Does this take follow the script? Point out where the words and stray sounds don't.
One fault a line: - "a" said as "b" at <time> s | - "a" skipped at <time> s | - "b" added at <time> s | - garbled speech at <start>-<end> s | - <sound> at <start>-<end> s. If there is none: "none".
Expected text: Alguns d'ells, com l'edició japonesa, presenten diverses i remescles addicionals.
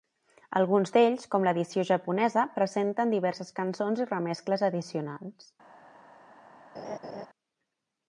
- "cançons" added at 3.6 s
- laugh at 6.7-7.3 s